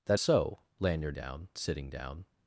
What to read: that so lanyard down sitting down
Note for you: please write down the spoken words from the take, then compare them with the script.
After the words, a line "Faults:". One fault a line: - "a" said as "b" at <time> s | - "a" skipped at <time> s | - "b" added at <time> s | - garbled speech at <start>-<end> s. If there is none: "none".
that so lanyard down sitting down
Faults:
none